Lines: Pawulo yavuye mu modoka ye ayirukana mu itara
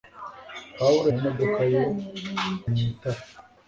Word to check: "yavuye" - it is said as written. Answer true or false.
false